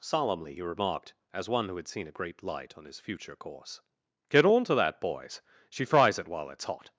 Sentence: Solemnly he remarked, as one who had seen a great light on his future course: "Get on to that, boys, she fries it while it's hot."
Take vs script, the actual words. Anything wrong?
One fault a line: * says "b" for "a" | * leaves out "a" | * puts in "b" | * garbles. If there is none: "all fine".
all fine